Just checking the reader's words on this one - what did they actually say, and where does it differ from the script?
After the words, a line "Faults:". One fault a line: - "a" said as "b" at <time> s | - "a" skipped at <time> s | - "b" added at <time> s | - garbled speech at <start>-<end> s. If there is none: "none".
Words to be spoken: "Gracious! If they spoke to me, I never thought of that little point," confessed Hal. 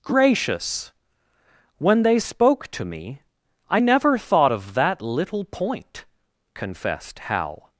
"Gracious! When they spoke to me, I never thought of that little point," confessed Hal.
Faults:
- "If" said as "When" at 1.8 s